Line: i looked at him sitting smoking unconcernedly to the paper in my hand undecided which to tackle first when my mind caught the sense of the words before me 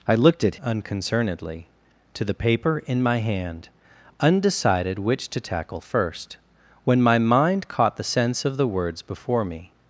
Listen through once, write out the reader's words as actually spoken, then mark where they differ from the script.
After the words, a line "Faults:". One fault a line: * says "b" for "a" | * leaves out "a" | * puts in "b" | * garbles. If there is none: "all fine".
i looked at unconcernedly to the paper in my hand undecided which to tackle first when my mind caught the sense of the words before me
Faults:
* leaves out "him sitting smoking"